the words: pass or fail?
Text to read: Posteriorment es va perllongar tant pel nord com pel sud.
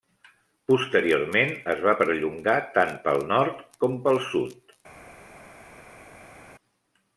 pass